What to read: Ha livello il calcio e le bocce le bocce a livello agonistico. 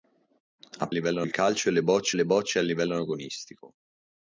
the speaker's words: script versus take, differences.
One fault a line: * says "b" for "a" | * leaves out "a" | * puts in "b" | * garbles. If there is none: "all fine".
all fine